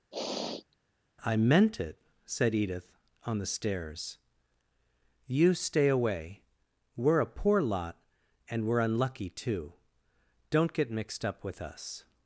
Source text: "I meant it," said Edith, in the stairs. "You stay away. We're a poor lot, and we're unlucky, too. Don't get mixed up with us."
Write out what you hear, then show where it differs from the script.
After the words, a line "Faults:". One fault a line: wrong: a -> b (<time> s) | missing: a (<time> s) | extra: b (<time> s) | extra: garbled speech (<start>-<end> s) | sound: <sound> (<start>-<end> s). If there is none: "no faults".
"I meant it," said Edith, on the stairs. "You stay away. We're a poor lot, and we're unlucky, too. Don't get mixed up with us."
Faults:
sound: sniff (0.1-0.8 s)
wrong: in -> on (3.3 s)